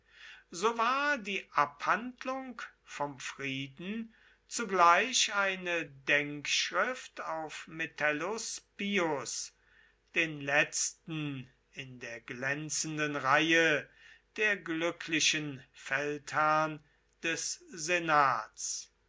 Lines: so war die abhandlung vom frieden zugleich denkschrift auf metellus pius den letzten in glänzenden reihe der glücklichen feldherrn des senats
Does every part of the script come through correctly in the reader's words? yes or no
no